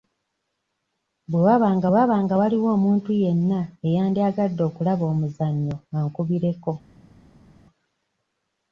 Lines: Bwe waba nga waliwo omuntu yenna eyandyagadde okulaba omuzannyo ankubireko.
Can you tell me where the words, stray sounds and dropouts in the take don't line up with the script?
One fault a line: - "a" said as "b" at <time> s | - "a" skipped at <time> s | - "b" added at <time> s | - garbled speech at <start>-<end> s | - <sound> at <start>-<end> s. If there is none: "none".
- "waba nga" added at 1.9 s